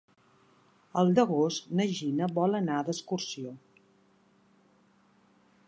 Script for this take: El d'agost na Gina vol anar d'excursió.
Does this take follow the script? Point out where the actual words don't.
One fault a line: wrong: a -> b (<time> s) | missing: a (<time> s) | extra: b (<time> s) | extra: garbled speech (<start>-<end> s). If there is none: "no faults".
no faults